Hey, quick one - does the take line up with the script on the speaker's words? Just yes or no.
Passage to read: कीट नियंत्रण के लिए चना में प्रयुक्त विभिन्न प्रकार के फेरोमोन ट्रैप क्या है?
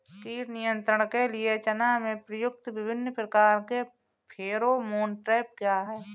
yes